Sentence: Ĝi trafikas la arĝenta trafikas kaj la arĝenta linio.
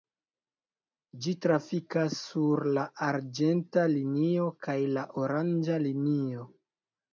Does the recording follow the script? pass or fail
fail